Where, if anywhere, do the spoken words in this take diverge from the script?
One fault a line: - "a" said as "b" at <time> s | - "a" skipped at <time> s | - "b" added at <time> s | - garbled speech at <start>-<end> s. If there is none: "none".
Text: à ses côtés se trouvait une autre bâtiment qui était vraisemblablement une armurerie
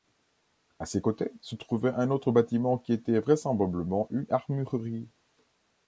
- "une" said as "un" at 1.9 s